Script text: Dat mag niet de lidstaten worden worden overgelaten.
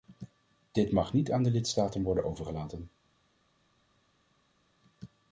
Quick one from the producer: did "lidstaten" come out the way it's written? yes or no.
yes